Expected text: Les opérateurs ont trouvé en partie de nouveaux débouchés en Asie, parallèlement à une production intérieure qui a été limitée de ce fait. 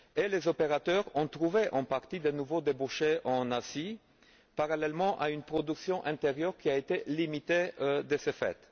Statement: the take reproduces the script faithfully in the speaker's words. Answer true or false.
true